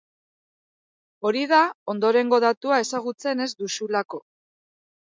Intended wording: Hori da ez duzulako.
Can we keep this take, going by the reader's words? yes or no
no